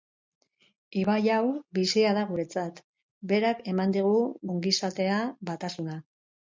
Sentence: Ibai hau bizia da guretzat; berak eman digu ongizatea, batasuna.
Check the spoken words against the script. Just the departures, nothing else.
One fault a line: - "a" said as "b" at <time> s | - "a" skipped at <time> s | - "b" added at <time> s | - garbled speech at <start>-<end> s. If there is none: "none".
none